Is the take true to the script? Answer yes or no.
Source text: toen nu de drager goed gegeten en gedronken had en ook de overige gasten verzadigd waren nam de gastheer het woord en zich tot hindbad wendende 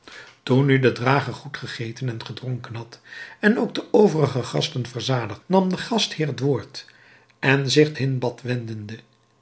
no